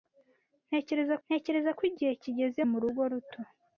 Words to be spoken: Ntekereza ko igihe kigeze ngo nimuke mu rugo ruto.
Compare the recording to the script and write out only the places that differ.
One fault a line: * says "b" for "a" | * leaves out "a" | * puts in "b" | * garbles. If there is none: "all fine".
* puts in "ntekereza"
* leaves out "ngo nimuke"